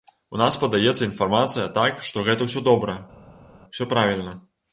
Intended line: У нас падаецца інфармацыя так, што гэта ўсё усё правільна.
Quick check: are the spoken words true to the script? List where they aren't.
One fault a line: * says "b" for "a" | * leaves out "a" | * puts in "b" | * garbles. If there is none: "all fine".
* puts in "добра"